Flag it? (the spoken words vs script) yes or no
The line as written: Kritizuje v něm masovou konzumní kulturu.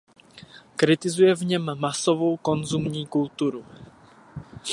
no